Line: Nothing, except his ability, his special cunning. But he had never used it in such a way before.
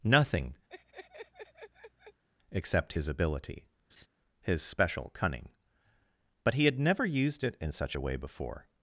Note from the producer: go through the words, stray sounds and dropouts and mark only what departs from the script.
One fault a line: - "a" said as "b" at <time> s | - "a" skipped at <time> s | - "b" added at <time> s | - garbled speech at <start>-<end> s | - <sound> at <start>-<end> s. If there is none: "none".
- laugh at 0.7-2.2 s
- laugh at 3.9-4.1 s